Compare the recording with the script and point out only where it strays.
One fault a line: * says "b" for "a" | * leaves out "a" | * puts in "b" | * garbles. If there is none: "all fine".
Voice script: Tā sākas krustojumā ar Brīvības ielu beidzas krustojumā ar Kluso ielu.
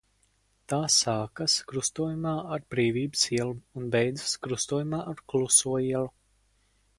* puts in "un"